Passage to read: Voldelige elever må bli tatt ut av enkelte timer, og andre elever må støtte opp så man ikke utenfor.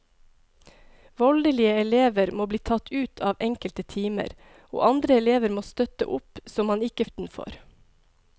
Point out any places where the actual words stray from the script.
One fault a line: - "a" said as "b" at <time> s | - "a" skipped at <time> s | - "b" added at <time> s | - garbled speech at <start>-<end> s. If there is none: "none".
none